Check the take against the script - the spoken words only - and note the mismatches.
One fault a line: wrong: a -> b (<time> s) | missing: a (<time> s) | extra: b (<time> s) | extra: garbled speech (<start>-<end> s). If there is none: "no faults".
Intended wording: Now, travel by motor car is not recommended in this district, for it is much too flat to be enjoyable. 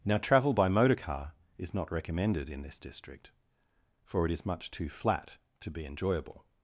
no faults